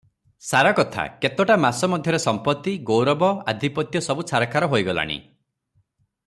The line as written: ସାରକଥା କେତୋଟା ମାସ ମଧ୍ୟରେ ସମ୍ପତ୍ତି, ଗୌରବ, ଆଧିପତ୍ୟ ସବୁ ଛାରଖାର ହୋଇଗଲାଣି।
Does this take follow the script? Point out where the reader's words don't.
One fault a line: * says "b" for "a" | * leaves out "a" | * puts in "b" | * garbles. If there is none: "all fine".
all fine